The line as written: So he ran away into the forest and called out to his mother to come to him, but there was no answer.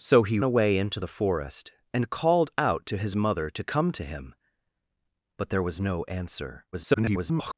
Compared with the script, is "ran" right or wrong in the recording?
wrong